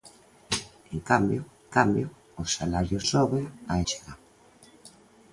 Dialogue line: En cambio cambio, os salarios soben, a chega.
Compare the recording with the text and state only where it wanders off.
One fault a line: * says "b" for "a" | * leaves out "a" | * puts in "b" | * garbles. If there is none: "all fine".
all fine